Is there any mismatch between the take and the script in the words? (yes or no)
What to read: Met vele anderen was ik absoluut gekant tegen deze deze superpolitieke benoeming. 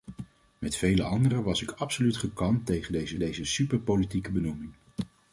no